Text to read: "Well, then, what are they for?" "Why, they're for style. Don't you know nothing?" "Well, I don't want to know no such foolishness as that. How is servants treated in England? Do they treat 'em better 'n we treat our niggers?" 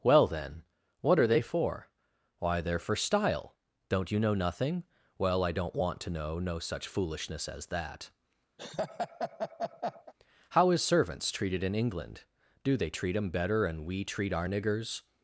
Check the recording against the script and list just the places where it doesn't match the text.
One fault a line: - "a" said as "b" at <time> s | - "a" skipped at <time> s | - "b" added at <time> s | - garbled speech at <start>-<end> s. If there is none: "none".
none